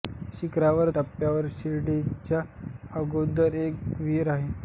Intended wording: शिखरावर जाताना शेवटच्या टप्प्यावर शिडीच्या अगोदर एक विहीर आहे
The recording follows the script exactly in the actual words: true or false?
false